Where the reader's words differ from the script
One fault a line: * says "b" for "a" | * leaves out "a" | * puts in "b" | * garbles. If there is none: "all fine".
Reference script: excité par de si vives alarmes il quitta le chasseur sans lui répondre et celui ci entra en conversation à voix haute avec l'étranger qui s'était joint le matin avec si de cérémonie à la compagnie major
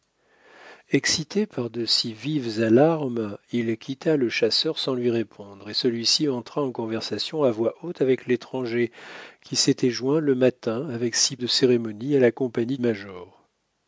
all fine